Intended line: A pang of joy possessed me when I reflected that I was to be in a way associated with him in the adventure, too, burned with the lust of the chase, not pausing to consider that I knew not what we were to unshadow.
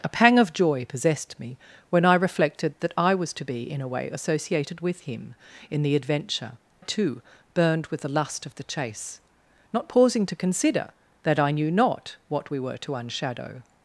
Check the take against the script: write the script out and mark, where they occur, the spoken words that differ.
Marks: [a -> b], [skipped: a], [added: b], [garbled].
A pang of joy possessed me when I reflected that I was to be in a way associated with him in the adventure, too, burned with the lust of the chase, not pausing to consider that I knew not what we were to unshadow.